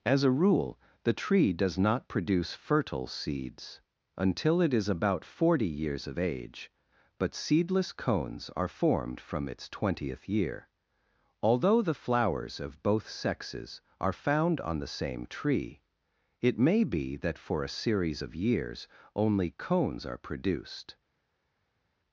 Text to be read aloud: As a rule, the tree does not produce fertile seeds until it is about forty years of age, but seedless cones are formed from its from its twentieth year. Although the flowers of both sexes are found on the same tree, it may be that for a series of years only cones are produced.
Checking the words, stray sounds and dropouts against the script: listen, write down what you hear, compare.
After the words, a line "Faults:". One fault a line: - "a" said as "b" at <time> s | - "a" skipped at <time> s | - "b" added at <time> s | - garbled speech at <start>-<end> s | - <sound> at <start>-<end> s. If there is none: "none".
As a rule, the tree does not produce fertile seeds until it is about forty years of age, but seedless cones are formed from its twentieth year. Although the flowers of both sexes are found on the same tree, it may be that for a series of years only cones are produced.
Faults:
- "from its" skipped at 9.7 s